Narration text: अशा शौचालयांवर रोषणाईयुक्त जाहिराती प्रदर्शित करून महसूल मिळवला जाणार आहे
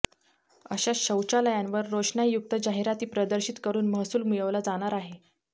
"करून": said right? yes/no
yes